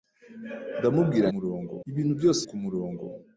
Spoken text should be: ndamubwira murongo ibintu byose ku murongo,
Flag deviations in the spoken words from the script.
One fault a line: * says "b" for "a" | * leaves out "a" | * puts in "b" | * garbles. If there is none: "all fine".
all fine